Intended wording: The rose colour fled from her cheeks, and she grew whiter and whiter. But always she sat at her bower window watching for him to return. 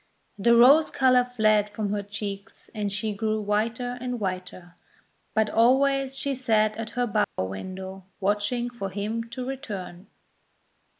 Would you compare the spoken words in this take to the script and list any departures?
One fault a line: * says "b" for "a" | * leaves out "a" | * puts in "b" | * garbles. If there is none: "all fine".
all fine